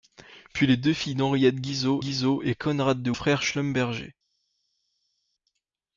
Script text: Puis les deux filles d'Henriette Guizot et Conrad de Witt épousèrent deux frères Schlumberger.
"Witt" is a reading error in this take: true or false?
true